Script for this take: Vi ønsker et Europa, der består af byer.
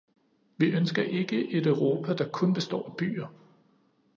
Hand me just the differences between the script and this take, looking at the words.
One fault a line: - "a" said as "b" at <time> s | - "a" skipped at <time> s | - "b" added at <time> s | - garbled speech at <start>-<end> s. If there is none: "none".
- "ikke" added at 1.0 s
- "kun" added at 2.3 s